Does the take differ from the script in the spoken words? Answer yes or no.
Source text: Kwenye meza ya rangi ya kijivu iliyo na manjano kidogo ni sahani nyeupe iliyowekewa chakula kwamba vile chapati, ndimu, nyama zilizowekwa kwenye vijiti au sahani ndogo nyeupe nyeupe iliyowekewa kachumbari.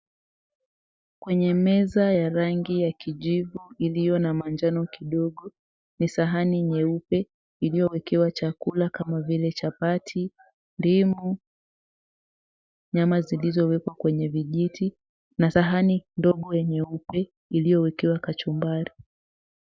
yes